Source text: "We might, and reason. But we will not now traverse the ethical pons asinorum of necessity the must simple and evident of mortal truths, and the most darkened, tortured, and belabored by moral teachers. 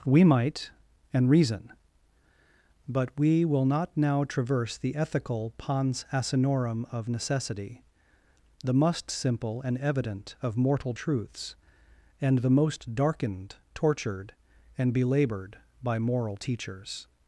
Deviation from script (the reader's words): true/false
false